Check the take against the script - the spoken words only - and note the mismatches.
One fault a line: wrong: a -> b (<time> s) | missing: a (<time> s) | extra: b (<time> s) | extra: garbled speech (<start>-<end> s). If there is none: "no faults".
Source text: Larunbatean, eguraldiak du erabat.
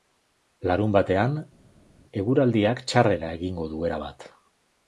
extra: txarrera egingo (2.9 s)